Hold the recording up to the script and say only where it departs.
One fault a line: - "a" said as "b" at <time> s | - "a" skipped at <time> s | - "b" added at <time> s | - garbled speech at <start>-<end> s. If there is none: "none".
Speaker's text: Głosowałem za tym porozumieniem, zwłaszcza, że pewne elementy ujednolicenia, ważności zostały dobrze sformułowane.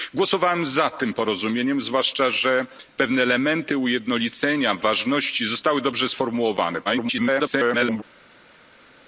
- garbled speech at 6.8-8.0 s